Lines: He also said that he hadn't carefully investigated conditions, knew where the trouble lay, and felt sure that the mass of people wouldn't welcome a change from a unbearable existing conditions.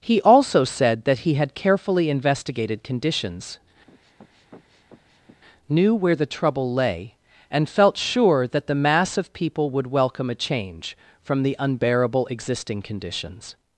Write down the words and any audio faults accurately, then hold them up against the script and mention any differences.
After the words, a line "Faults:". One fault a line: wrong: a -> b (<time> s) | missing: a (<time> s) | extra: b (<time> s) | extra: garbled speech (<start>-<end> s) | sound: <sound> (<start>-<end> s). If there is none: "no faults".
He also said that he had carefully investigated conditions, knew where the trouble lay, and felt sure that the mass of people would welcome a change from the unbearable existing conditions.
Faults:
wrong: hadn't -> had (1.4 s)
sound: sniff (3.9-5.4 s)
wrong: wouldn't -> would (9.7 s)
wrong: a -> the (11.4 s)